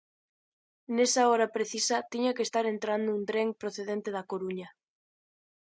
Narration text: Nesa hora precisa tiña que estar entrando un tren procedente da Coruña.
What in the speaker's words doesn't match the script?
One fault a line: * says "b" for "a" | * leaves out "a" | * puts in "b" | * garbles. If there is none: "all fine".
all fine